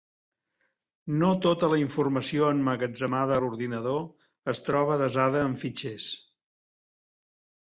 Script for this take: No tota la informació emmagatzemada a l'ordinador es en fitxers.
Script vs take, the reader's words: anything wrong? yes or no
yes